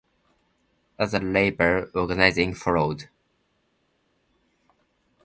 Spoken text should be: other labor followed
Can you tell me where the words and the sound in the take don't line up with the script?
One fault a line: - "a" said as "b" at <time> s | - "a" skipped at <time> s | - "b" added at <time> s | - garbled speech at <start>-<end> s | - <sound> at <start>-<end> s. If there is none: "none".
- "organizing" added at 1.9 s